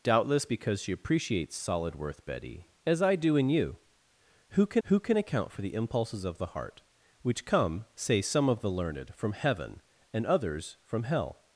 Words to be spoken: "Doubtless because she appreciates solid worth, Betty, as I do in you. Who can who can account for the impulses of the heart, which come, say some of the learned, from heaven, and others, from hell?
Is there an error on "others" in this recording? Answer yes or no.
no